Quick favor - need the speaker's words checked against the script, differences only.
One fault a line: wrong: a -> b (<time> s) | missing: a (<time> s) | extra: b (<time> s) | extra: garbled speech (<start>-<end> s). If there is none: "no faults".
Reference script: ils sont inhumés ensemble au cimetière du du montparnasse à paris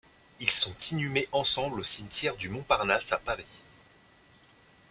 missing: du (2.5 s)